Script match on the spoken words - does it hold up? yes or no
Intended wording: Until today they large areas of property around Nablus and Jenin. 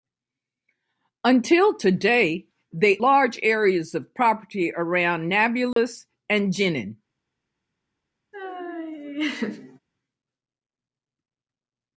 yes